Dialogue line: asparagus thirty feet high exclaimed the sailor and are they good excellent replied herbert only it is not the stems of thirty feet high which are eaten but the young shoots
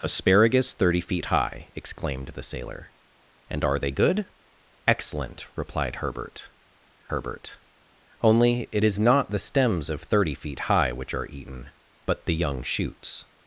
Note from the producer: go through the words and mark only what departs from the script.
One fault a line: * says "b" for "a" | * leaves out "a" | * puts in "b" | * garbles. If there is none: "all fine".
* puts in "herbert"